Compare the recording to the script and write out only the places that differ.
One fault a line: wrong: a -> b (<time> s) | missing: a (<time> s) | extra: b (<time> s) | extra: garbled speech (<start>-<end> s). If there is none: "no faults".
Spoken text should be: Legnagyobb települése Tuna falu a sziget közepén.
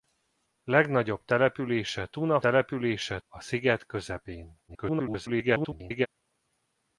wrong: falu -> települése (2.4 s)
extra: garbled speech (4.7-6.1 s)